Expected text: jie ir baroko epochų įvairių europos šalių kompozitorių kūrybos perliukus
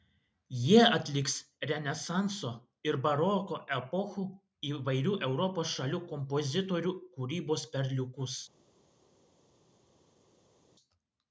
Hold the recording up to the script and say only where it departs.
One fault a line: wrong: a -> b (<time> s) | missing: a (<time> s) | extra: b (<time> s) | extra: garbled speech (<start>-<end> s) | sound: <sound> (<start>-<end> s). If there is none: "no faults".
extra: atliks renesanso (1.0 s)